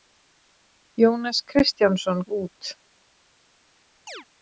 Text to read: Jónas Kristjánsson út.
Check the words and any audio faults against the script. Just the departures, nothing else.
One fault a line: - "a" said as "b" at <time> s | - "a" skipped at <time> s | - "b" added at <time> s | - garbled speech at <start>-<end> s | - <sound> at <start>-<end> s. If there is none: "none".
- chirp at 4.1-4.3 s